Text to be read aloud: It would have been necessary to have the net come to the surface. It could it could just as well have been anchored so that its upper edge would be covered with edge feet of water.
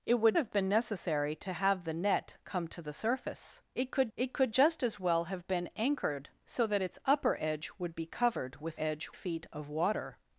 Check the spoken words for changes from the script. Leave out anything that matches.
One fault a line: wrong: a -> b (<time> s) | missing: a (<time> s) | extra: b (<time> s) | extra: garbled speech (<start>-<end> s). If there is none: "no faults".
no faults